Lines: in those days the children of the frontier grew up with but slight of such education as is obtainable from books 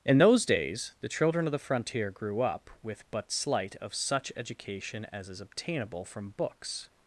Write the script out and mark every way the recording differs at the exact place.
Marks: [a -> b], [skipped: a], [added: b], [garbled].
in those days the children of the frontier grew up with but slight of such education as is obtainable from books